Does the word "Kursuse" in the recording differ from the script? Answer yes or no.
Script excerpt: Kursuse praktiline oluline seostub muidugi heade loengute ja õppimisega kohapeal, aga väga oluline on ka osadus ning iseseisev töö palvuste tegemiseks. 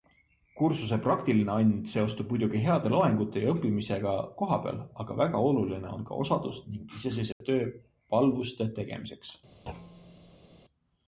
no